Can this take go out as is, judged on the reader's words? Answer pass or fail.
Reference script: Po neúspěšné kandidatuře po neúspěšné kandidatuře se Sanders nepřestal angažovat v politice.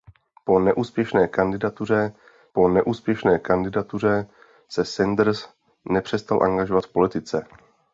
pass